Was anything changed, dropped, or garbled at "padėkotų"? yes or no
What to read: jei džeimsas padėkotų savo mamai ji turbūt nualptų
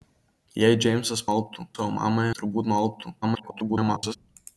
yes